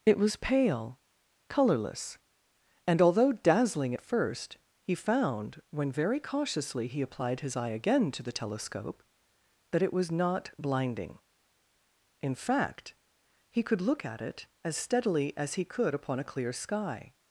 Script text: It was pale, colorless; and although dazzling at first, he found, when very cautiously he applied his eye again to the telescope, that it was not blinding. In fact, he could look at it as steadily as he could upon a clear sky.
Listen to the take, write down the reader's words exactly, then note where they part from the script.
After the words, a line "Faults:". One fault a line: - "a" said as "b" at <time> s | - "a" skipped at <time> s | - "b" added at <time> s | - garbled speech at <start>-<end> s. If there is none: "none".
It was pale, colorless; and although dazzling at first, he found, when very cautiously he applied his eye again to the telescope, that it was not blinding. In fact, he could look at it as steadily as he could upon a clear sky.
Faults:
none